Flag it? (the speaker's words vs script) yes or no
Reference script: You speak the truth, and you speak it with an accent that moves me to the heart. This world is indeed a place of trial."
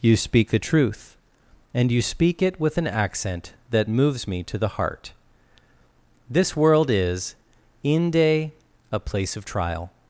yes